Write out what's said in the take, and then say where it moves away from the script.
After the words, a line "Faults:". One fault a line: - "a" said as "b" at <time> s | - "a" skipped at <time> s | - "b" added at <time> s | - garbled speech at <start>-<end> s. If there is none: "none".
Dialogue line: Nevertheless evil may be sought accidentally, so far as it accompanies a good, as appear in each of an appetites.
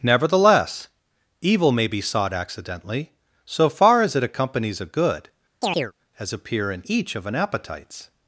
Nevertheless evil may be sought accidentally, so far as it accompanies a good, as appear in each of an appetites.
Faults:
none